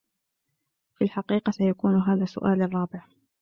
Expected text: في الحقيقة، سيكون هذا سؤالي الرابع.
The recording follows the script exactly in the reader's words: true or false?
true